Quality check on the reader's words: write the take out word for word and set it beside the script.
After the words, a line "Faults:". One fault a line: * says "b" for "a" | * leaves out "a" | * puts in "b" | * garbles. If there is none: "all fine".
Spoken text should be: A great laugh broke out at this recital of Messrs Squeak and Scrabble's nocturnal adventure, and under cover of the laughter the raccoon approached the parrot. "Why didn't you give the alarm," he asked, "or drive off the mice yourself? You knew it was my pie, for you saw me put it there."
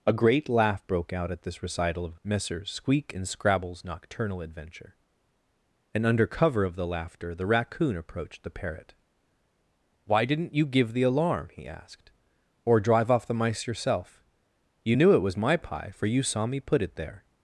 A great laugh broke out at this recital of Messrs Squeak and Scrabble's nocturnal adventure, and under cover of the laughter the raccoon approached the parrot. "Why didn't you give the alarm," he asked, "or drive off the mice yourself? You knew it was my pie, for you saw me put it there."
Faults:
all fine